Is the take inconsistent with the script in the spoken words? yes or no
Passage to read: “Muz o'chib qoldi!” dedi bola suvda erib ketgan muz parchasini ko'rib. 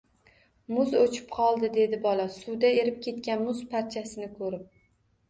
no